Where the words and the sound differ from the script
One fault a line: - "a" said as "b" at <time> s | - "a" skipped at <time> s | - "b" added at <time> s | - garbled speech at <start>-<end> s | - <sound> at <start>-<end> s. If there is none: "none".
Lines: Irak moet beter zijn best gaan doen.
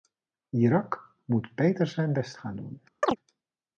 - chirp at 3.0-3.2 s